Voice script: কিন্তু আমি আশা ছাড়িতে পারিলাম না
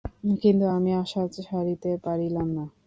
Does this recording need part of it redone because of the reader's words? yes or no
no